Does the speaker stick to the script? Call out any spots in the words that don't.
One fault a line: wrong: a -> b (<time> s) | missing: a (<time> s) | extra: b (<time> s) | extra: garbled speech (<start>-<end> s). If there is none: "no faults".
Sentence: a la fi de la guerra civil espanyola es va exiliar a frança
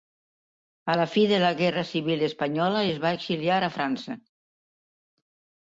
no faults